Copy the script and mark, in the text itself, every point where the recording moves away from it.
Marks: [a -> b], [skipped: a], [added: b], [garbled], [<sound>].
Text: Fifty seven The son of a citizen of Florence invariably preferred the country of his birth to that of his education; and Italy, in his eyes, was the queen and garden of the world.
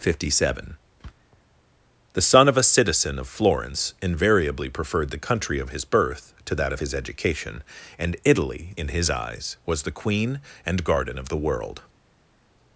Fifty seven The son of a citizen of Florence invariably preferred the country of his birth to that of his education; and Italy, in his eyes, was the queen and garden of the world.